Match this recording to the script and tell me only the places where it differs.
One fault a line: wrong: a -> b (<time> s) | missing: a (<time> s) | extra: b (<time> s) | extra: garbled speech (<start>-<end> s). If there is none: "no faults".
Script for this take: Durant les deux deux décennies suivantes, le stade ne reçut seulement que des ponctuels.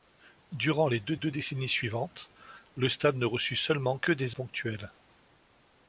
no faults